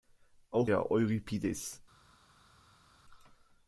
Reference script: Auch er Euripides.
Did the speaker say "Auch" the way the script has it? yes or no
yes